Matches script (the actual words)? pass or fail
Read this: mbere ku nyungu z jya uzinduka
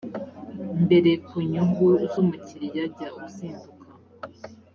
fail